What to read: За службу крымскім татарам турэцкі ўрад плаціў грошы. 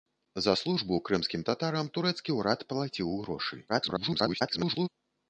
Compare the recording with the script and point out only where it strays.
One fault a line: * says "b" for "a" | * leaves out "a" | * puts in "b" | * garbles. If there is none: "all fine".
* garbles